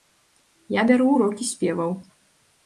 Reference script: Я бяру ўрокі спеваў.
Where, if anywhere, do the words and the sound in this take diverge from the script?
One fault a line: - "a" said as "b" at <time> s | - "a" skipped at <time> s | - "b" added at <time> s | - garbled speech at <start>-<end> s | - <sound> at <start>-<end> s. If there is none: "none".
none